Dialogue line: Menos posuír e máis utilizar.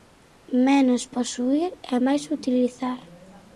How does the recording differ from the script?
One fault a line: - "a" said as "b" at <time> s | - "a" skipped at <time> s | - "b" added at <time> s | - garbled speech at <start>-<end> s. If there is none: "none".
none